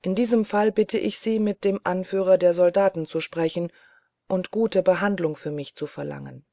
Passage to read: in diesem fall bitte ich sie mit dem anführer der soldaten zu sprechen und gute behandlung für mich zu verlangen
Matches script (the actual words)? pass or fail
pass